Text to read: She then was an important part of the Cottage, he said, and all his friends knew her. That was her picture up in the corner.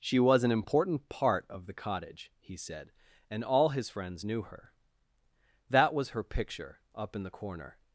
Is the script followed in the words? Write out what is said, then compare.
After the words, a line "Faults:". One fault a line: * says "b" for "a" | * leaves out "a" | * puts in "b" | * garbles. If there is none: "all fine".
She was an important part of the Cottage, he said, and all his friends knew her. That was her picture up in the corner.
Faults:
* leaves out "then"